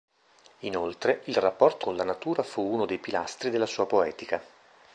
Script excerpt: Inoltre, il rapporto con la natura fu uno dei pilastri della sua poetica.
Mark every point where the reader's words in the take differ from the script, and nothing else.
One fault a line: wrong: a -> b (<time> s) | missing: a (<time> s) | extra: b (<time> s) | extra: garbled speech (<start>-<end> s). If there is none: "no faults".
no faults